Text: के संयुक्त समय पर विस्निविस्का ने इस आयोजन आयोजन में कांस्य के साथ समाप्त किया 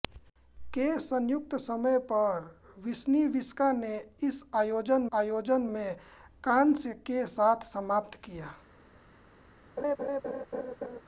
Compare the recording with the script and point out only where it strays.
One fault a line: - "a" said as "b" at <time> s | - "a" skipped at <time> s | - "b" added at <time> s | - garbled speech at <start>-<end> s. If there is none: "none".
none